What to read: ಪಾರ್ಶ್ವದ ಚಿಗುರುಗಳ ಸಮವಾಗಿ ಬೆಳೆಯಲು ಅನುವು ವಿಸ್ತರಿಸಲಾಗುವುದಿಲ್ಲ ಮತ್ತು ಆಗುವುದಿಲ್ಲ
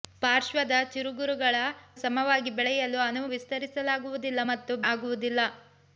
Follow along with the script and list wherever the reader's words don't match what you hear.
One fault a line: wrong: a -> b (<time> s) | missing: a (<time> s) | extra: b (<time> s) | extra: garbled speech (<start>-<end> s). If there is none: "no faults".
no faults